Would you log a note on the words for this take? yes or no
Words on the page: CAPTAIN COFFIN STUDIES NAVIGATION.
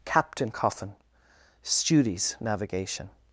no